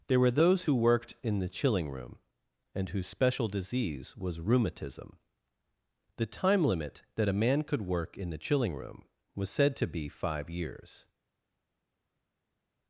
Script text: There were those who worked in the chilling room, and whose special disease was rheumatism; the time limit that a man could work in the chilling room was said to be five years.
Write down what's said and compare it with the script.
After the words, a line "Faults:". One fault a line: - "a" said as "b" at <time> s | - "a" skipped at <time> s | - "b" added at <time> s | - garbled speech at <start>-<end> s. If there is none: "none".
There were those who worked in the chilling room, and whose special disease was rheumatism; the time limit that a man could work in the chilling room was said to be five years.
Faults:
none